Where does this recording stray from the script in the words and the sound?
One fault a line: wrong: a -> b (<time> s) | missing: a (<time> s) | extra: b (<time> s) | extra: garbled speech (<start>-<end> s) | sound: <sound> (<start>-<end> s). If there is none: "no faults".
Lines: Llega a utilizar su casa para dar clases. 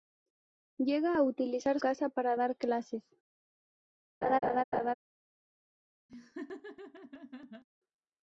missing: su (1.8 s)
sound: laugh (4.2-4.9 s)
sound: laugh (6.1-7.6 s)